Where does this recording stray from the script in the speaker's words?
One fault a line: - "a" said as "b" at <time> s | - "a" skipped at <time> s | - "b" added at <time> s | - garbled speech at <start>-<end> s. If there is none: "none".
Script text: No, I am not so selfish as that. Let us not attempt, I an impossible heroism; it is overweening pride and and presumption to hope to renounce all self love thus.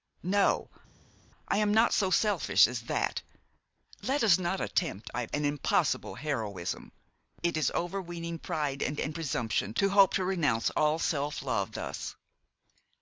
none